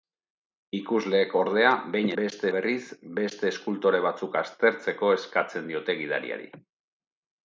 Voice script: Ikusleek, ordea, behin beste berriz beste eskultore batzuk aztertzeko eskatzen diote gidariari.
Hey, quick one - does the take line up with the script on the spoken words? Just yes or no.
yes